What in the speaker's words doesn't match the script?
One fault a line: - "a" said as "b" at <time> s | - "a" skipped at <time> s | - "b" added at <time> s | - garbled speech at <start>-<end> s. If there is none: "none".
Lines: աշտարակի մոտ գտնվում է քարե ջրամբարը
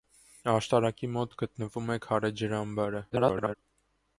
- garbled speech at 3.1-3.6 s